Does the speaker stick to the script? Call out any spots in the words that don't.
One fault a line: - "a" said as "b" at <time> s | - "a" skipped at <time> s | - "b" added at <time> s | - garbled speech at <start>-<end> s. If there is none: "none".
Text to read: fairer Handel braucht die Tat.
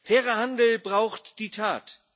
none